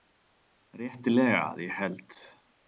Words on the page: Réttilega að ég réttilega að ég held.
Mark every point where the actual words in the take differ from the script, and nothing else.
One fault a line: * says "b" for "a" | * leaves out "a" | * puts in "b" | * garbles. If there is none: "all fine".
* leaves out "réttilega að ég"